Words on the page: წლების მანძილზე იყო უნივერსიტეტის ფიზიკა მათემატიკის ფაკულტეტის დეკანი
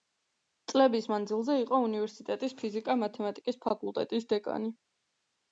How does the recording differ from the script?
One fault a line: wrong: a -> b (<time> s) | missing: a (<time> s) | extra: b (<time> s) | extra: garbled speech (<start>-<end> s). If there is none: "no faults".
no faults